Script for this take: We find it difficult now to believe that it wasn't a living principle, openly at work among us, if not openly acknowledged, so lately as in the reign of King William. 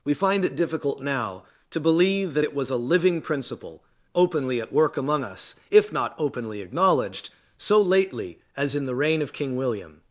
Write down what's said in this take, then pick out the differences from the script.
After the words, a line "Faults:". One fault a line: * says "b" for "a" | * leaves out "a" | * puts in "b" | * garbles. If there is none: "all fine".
We find it difficult now to believe that it was a living principle, openly at work among us, if not openly acknowledged, so lately as in the reign of King William.
Faults:
* says "was" for "wasn't"